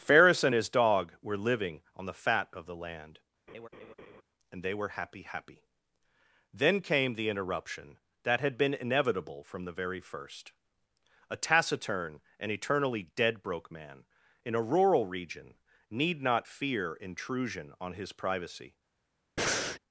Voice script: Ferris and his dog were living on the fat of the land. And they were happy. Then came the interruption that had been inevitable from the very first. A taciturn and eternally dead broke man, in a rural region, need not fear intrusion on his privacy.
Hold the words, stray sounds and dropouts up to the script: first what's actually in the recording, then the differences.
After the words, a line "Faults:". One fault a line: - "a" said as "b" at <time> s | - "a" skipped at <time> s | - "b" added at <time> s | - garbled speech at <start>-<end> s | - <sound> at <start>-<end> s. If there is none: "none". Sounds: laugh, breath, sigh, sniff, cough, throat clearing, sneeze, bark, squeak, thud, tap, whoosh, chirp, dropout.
Ferris and his dog were living on the fat of the land. And they were happy happy. Then came the interruption that had been inevitable from the very first. A taciturn and eternally dead broke man, in a rural region, need not fear intrusion on his privacy.
Faults:
- laugh at 3.5-4.2 s
- "happy" added at 5.2 s
- breath at 19.4-19.8 s